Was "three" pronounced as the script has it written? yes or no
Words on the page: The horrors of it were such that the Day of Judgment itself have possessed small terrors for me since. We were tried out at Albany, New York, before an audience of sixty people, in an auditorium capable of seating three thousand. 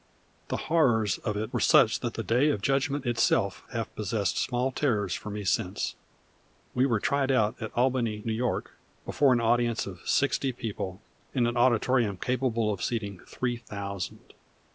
yes